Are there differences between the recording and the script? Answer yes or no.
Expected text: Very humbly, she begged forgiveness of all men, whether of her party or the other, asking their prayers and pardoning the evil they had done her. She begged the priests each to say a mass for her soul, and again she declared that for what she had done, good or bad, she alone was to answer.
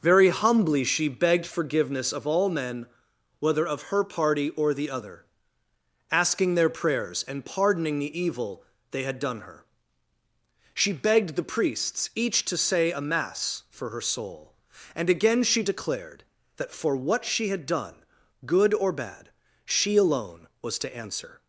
no